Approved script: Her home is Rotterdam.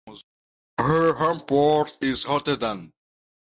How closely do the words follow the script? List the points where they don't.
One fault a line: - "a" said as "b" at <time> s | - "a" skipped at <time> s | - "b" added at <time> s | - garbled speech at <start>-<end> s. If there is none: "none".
- "port" added at 1.4 s